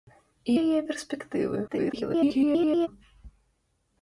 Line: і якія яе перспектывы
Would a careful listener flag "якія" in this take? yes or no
yes